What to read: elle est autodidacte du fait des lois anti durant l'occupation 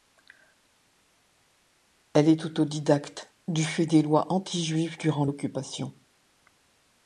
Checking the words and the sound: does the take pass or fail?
fail